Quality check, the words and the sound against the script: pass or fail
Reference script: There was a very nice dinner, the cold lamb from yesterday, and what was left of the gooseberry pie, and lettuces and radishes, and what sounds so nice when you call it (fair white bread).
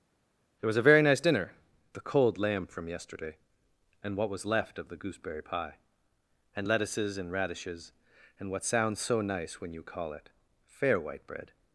pass